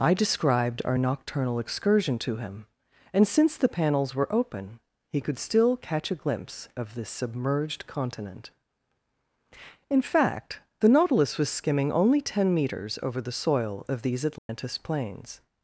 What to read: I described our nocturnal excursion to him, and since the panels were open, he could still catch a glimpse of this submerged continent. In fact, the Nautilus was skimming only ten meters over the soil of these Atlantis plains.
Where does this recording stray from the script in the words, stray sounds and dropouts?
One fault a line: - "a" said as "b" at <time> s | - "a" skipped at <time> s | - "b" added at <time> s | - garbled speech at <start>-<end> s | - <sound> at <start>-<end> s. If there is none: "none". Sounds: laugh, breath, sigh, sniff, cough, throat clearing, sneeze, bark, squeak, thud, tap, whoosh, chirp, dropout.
- dropout at 14.4-14.5 s